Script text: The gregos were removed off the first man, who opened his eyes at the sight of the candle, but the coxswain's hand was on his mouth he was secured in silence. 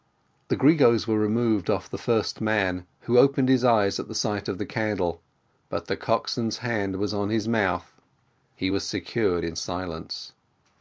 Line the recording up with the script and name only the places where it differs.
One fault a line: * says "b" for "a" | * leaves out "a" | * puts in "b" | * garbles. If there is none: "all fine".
all fine